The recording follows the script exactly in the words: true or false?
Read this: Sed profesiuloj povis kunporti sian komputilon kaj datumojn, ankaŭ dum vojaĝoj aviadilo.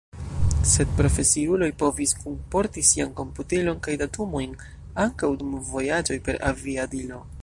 false